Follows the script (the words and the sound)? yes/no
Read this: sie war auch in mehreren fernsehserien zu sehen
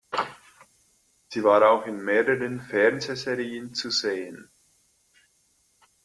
yes